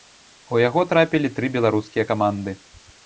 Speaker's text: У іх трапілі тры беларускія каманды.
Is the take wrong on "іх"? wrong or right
wrong